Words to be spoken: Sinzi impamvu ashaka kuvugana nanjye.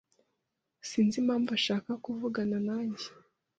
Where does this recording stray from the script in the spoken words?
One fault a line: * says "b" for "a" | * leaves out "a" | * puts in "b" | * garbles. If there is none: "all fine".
all fine